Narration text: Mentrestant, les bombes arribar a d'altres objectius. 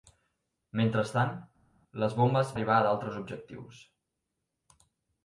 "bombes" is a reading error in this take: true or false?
false